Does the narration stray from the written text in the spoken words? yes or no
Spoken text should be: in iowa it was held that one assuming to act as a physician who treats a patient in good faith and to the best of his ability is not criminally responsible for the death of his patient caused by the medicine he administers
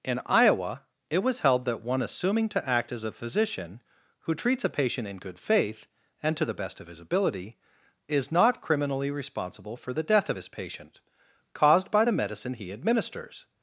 no